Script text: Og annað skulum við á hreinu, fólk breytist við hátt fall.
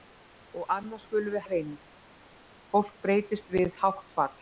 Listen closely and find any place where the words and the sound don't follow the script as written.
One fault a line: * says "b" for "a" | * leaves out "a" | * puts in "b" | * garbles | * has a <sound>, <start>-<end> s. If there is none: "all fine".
all fine